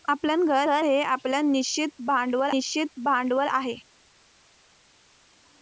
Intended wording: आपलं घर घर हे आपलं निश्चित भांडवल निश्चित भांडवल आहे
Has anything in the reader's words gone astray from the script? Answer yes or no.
no